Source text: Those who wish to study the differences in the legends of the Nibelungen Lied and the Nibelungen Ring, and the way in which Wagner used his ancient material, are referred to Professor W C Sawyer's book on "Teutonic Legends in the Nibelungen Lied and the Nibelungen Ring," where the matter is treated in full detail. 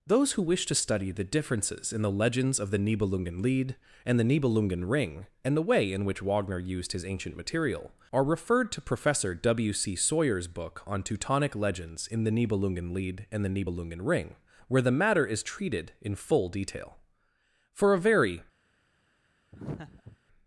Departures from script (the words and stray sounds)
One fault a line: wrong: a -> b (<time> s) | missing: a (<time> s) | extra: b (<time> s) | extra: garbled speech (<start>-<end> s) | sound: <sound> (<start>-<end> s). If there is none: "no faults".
extra: For a very (17.7 s)
sound: laugh (19.5-20.2 s)